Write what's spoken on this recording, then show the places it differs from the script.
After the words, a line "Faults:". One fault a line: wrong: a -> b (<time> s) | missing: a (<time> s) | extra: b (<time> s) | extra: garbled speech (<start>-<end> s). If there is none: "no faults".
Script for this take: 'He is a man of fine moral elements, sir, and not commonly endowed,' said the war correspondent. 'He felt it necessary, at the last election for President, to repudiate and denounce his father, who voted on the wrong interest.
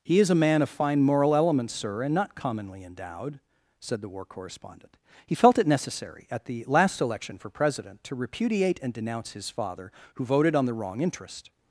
'He is a man of fine moral elements, sir, and not commonly endowed,' said the war correspondent. 'He felt it necessary, at the last election for President, to repudiate and denounce his father, who voted on the wrong interest.
Faults:
no faults